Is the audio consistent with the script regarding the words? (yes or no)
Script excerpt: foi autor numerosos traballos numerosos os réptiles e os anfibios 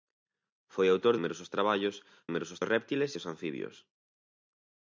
yes